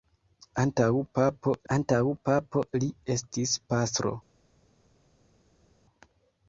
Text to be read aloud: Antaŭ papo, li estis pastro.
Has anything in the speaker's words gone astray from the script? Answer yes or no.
yes